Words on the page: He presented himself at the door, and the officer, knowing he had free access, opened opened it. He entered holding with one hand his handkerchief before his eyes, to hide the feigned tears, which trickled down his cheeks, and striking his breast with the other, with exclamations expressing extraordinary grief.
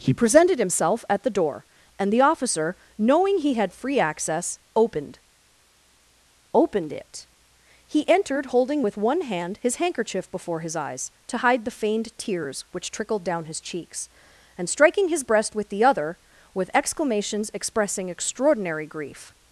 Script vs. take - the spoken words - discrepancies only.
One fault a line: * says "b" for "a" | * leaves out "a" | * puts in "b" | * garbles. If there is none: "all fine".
all fine